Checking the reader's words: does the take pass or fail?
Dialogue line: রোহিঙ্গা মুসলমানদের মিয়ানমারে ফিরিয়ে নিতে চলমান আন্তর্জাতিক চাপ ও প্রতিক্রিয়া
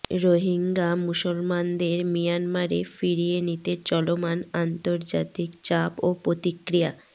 pass